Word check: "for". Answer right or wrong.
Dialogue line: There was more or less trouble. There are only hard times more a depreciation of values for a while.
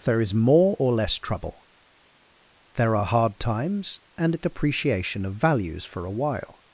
right